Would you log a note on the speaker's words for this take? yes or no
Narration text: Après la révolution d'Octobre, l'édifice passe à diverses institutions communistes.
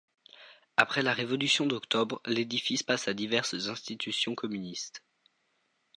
no